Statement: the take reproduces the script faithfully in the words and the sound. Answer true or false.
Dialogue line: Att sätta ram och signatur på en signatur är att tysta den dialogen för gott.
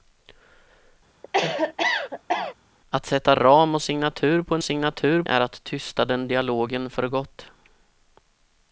false